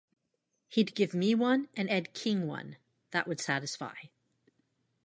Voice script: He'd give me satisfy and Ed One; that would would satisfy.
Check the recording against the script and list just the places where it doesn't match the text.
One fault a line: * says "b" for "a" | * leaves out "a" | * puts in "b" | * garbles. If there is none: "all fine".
* says "one" for "satisfy"
* puts in "King"
* leaves out "would"